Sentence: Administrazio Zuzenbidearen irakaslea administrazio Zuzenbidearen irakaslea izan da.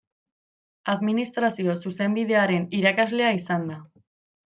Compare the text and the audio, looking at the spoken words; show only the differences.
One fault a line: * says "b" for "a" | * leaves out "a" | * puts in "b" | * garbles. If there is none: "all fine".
* leaves out "administrazio Zuzenbidearen irakaslea"